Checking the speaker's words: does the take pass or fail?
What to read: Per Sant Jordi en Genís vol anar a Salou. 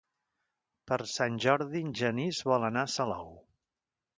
pass